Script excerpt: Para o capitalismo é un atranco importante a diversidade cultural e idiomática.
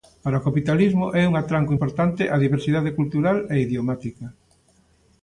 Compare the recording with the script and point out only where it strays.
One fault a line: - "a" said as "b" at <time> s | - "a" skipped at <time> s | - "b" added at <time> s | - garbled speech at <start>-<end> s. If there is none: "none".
none